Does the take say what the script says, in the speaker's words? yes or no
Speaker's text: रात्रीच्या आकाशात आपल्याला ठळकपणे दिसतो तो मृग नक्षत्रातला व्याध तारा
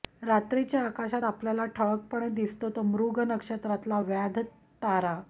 yes